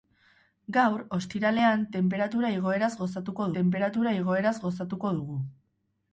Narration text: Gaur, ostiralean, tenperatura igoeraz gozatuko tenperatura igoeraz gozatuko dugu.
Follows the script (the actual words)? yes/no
yes